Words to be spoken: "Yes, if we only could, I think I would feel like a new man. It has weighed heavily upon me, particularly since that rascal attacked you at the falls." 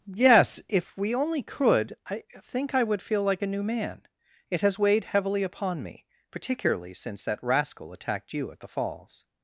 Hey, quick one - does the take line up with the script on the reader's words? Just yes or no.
yes